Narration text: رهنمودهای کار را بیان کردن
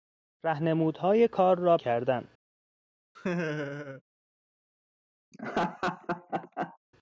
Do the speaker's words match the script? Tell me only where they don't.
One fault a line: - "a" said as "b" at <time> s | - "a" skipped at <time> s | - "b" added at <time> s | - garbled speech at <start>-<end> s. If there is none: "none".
- "بیان" skipped at 1.8 s